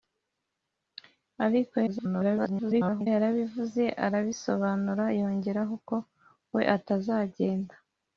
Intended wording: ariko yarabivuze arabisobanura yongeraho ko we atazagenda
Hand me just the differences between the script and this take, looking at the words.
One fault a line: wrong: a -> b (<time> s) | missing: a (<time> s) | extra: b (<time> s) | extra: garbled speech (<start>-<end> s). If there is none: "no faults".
extra: garbled speech (1.9-3.1 s)